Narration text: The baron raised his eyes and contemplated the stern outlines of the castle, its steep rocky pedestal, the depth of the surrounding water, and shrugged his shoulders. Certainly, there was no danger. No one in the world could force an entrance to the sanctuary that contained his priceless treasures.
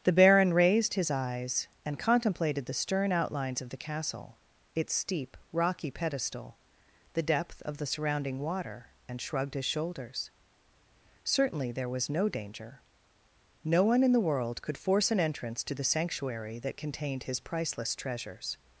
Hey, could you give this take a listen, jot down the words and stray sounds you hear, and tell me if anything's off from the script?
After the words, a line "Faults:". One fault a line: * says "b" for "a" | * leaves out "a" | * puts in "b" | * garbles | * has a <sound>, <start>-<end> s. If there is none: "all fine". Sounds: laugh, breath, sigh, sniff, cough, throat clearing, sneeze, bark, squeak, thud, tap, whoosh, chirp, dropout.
The baron raised his eyes and contemplated the stern outlines of the castle, its steep rocky pedestal, the depth of the surrounding water, and shrugged his shoulders. Certainly, there was no danger. No one in the world could force an entrance to the sanctuary that contained his priceless treasures.
Faults:
all fine